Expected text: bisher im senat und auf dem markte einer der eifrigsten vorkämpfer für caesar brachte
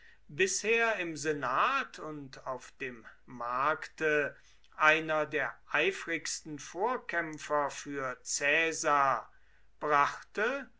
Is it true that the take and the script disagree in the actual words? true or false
false